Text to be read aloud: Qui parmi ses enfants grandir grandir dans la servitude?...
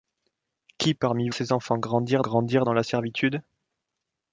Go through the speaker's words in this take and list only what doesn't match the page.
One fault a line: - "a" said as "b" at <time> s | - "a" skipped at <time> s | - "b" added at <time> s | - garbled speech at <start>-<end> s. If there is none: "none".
none